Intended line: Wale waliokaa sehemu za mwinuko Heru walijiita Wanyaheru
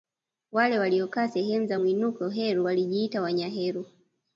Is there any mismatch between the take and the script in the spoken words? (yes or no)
no